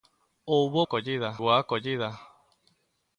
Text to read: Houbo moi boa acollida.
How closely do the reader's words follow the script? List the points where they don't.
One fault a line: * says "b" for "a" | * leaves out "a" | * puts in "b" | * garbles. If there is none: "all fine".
* says "acollida" for "moi"